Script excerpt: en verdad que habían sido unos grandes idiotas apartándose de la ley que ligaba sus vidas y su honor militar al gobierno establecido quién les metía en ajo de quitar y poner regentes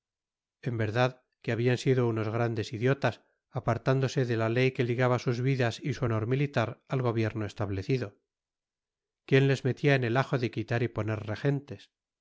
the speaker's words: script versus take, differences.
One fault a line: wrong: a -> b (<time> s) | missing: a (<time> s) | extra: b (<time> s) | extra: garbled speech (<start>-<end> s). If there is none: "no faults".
extra: el (10.0 s)